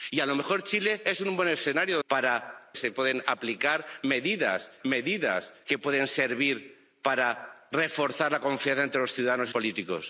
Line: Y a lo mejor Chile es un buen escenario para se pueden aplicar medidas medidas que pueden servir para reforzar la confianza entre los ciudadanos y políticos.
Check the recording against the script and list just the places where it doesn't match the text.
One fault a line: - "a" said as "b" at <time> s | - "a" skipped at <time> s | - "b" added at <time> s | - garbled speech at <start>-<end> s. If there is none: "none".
none